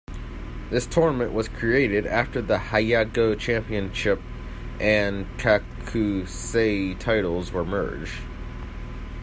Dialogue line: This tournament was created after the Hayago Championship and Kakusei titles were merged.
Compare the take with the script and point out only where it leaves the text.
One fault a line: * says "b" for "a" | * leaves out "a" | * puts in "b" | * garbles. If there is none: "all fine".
all fine